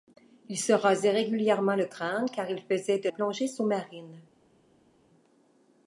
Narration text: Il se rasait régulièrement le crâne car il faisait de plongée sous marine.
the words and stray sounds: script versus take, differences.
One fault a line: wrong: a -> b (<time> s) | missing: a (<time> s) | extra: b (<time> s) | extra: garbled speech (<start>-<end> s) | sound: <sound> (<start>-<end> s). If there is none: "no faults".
no faults